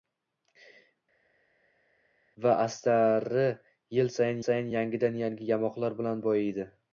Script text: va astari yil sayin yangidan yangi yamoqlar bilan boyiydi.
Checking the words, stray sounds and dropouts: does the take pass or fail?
fail